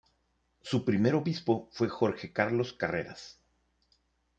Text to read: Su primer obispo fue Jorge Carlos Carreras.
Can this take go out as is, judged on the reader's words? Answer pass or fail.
pass